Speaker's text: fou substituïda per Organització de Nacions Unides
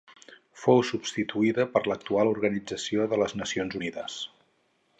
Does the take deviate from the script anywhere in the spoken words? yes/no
yes